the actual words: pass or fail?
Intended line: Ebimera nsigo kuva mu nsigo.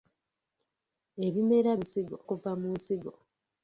pass